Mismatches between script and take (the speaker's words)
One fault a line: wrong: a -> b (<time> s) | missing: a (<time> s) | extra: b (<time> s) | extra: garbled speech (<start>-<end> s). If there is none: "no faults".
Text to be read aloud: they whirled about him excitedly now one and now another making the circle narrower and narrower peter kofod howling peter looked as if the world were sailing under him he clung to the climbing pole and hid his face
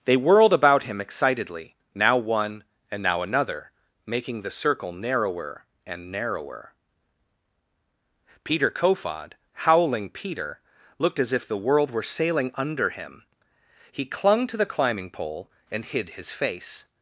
no faults